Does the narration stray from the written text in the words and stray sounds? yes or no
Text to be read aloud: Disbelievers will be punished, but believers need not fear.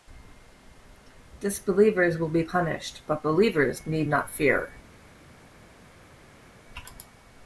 no